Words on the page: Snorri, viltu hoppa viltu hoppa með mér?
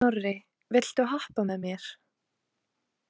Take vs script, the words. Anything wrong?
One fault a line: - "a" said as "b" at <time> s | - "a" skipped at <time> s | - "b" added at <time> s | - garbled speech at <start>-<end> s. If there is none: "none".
- "viltu hoppa" skipped at 1.4 s